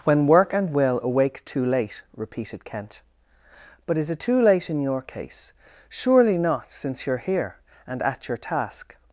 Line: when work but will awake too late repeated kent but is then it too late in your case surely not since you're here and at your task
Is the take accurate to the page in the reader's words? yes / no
no